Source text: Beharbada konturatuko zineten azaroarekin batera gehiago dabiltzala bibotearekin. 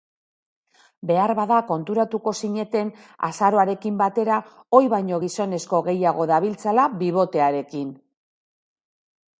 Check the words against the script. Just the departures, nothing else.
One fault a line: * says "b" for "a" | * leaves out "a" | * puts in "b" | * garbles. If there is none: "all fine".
* puts in "ohi baino gizonezko"